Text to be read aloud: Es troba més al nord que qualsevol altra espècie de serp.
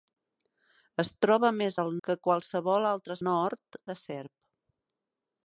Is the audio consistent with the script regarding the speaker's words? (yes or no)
no